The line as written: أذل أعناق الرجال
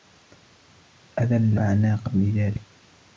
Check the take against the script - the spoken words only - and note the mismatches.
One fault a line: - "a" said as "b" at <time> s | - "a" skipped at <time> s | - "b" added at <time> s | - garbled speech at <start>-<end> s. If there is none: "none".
none